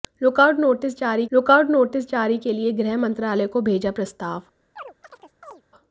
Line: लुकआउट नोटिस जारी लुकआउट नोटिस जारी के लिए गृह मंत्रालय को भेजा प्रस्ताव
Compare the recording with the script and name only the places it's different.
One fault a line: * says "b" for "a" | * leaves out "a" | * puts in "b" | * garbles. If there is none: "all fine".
all fine